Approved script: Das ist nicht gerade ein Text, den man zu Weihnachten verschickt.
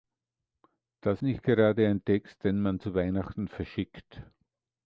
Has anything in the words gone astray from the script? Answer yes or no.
yes